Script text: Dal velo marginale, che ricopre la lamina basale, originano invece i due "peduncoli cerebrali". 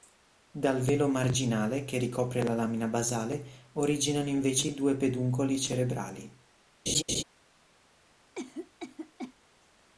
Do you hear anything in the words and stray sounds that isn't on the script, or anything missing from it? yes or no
yes